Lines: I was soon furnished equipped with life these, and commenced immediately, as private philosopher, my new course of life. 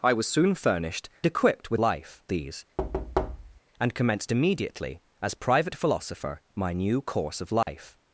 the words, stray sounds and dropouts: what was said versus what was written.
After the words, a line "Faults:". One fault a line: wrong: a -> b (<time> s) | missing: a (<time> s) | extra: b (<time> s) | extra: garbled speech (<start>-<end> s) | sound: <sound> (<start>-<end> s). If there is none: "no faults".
I was soon furnished equipped with life these, and commenced immediately, as private philosopher, my new course of life.
Faults:
sound: thud (2.8-3.6 s)
sound: dropout (7.6-7.7 s)